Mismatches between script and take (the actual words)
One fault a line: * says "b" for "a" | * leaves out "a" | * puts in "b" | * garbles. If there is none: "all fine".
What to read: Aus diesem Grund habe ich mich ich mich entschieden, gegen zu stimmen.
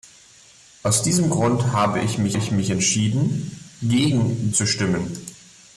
all fine